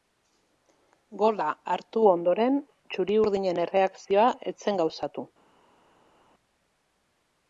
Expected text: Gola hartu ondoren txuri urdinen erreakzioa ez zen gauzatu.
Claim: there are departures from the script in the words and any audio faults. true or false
false